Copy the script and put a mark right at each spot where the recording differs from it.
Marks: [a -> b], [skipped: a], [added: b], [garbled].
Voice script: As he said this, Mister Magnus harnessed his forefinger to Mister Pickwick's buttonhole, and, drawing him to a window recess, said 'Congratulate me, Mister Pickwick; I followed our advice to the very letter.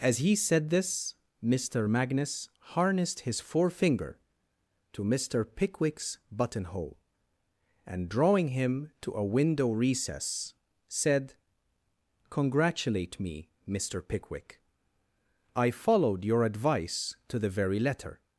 As he said this, Mister Magnus harnessed his forefinger to Mister Pickwick's buttonhole, and, drawing him to a window recess, said 'Congratulate me, Mister Pickwick; I followed [our -> your] advice to the very letter.